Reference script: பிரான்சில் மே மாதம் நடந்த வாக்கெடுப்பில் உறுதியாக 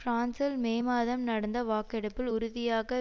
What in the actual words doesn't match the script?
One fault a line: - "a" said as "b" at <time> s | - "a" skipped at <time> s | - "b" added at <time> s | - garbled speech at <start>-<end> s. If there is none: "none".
none